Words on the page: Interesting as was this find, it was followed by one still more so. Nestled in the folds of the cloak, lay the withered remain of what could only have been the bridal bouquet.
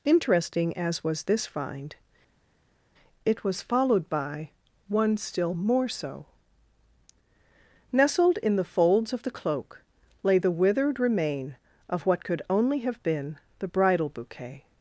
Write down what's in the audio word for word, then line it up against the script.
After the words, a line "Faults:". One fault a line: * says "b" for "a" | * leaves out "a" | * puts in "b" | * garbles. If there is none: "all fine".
Interesting as was this find, it was followed by one still more so. Nestled in the folds of the cloak, lay the withered remain of what could only have been the bridal bouquet.
Faults:
all fine